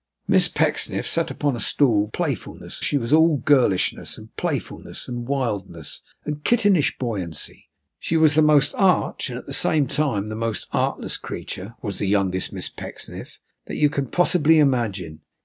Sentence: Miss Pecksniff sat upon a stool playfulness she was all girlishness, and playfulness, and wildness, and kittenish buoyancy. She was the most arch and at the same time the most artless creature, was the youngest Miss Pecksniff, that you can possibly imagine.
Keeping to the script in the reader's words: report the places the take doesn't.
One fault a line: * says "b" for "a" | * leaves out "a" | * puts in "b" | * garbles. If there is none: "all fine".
all fine